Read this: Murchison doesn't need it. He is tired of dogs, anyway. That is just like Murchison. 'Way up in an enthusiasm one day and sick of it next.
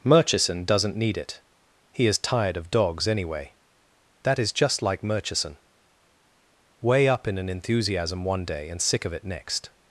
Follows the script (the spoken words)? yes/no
yes